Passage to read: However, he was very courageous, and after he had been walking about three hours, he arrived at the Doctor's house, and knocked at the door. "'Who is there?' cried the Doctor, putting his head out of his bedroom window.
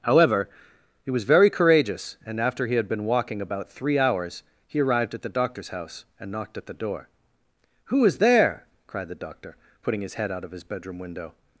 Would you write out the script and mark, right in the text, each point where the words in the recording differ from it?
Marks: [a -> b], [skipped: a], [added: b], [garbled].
However, he was very courageous, and after he had been walking about three hours, he arrived at the Doctor's house, and knocked at the door. "'Who is there?' cried the Doctor, putting his head out of his bedroom window.